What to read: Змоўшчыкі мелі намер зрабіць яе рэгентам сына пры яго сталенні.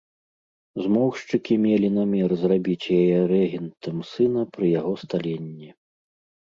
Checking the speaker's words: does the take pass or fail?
pass